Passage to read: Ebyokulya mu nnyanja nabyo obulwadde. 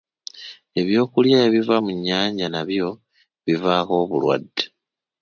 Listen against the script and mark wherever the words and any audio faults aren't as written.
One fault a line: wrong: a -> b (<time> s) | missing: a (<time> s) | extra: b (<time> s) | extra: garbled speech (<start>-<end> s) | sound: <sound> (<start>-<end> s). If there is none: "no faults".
extra: ebiva (1.5 s)
extra: bivaako (3.4 s)